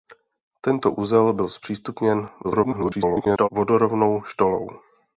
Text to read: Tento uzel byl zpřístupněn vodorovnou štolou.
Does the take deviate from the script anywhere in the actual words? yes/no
yes